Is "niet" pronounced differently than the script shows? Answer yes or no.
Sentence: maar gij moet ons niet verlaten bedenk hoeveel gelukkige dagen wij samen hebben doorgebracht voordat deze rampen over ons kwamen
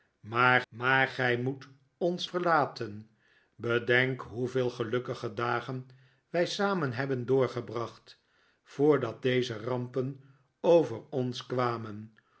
yes